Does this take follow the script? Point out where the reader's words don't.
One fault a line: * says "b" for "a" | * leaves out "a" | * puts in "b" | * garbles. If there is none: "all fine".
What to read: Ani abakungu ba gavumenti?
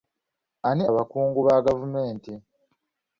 all fine